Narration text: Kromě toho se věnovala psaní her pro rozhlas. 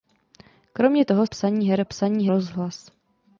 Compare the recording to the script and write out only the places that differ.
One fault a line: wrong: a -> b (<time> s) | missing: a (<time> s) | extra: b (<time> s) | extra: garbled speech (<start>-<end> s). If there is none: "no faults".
missing: se věnovala (1.3 s)
wrong: pro -> psaní (1.8 s)